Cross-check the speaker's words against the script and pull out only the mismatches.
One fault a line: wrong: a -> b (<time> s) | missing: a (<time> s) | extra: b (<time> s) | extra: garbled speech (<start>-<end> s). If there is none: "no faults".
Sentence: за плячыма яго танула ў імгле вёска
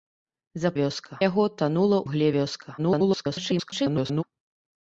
wrong: плячыма -> вёска (0.8 s)
missing: ў (2.0 s)
extra: garbled speech (2.8-4.2 s)